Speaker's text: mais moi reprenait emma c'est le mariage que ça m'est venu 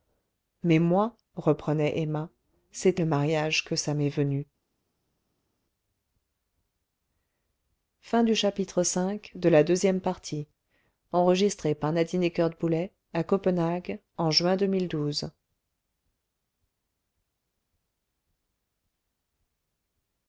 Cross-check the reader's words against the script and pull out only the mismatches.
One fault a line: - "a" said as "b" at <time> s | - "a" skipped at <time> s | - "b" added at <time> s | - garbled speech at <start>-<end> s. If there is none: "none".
none